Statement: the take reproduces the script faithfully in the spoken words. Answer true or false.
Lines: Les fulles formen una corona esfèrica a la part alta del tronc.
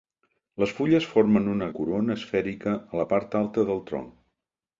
true